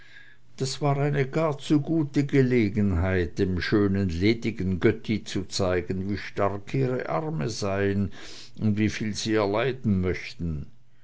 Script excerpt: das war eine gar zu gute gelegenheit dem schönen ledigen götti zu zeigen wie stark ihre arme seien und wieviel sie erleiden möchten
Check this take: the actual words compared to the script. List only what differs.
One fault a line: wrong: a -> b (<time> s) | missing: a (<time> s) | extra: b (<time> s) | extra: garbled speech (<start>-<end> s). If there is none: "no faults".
no faults